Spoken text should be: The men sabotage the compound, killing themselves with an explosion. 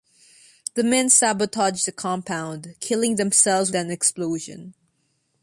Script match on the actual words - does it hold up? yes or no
no